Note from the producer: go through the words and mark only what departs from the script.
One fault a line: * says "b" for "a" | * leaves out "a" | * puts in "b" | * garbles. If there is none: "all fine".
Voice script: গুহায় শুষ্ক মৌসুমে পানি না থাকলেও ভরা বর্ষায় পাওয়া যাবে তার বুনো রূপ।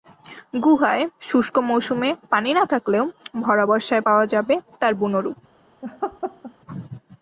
all fine